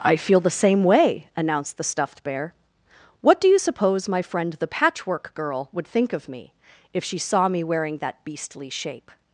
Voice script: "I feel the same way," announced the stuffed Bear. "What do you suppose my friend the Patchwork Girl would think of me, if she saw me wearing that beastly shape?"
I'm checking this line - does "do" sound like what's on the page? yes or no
yes